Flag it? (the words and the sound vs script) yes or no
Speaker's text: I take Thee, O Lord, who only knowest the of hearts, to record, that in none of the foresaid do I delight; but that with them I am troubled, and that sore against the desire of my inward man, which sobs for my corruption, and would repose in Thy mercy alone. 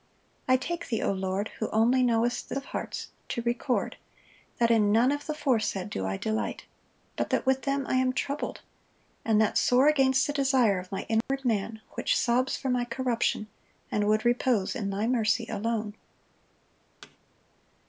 yes